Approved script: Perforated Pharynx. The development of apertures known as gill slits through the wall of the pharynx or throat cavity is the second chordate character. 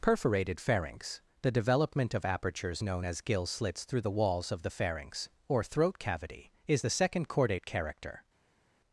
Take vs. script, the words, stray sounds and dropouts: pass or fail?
fail